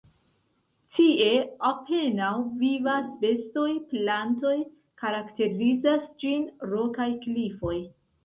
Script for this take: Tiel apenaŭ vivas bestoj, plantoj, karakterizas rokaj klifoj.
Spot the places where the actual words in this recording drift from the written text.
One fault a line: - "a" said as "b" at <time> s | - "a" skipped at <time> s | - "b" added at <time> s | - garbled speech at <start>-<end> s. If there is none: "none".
- "Tiel" said as "Tie" at 1.0 s
- "ĝin" added at 6.2 s